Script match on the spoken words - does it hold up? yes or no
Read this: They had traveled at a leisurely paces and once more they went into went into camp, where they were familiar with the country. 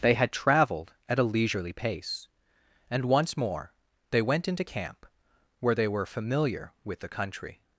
no